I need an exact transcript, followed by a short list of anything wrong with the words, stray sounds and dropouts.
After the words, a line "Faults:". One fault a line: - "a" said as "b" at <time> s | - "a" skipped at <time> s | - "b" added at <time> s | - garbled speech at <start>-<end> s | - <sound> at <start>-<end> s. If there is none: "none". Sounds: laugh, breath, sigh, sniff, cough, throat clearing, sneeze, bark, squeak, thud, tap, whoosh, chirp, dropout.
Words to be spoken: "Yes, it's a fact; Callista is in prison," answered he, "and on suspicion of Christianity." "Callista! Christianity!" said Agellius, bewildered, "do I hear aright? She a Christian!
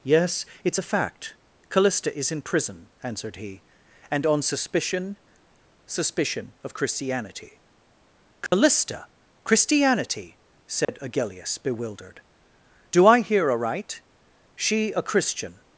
"Yes, it's a fact; Callista is in prison," answered he, "and on suspicion suspicion of Christianity." "Callista! Christianity!" said Agellius, bewildered, "do I hear aright? She a Christian!
Faults:
- "suspicion" added at 5.9 s
- dropout at 8.5-8.5 s
- dropout at 10.8-10.9 s